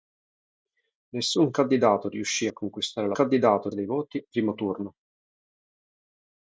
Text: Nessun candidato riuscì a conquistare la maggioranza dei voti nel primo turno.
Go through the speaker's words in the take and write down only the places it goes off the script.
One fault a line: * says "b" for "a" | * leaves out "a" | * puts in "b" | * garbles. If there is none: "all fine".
* says "candidato" for "maggioranza"
* leaves out "nel"